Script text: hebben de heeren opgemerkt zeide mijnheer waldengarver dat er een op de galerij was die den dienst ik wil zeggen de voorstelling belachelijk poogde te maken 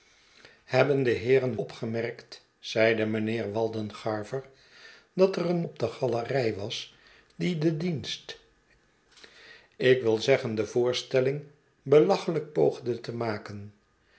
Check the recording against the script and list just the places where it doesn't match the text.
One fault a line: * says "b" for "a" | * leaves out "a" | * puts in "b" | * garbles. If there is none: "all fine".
all fine